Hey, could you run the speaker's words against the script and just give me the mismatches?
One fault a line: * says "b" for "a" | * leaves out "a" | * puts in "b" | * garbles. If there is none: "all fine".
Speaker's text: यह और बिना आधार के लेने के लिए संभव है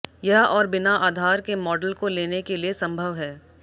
* puts in "मॉडल को"